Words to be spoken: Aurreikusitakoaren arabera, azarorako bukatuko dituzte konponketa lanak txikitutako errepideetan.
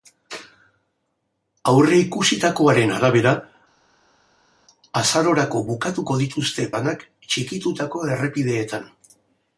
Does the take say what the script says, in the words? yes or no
no